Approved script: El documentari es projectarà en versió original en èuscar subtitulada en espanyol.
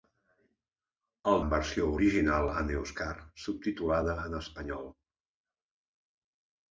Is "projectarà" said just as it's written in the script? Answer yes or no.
no